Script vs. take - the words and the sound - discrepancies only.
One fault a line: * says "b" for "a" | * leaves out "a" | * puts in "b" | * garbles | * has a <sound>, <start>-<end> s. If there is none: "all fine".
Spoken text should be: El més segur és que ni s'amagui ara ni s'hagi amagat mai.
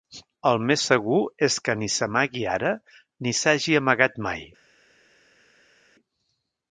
all fine